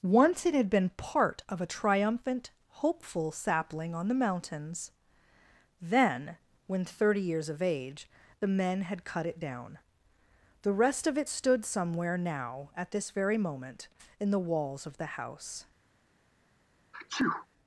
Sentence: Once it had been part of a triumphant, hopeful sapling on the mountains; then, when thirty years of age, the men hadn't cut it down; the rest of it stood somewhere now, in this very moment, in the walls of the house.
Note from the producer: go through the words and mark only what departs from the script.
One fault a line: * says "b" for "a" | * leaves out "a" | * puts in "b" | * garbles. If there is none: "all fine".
* says "had" for "hadn't"
* says "at" for "in"